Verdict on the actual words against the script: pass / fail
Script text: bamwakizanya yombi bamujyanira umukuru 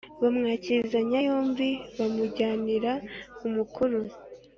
pass